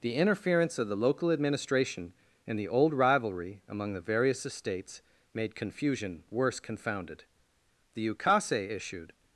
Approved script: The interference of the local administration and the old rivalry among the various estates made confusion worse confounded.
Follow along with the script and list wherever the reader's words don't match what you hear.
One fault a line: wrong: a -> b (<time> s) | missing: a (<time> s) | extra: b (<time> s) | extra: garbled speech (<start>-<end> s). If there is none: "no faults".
extra: The ukase issued (7.9 s)